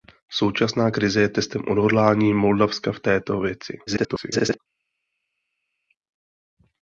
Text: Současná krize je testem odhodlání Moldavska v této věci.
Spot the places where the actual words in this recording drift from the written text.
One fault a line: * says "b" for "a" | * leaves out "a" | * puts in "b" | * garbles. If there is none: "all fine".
* garbles